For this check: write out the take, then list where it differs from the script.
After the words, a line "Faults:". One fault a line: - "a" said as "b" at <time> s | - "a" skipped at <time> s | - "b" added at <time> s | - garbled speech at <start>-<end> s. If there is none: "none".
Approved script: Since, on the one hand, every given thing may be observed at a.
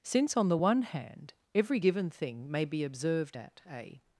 Since, on the one hand, every given thing may be observed at a.
Faults:
none